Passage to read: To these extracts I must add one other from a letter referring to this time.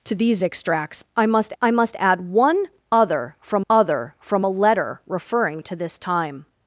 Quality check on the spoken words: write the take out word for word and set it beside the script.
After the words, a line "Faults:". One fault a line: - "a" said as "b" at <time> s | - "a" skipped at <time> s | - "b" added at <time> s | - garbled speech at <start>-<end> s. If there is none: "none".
To these extracts I must I must add one other from other from a letter referring to this time.
Faults:
- "I must" added at 1.6 s
- "other from" added at 3.7 s